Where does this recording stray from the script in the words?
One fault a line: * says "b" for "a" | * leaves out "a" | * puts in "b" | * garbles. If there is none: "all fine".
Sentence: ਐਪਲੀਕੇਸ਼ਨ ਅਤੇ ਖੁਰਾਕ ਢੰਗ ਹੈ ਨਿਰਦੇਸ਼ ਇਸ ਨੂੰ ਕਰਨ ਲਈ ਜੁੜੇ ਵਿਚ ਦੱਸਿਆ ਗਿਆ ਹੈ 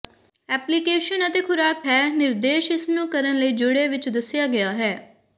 * leaves out "ਢੰਗ"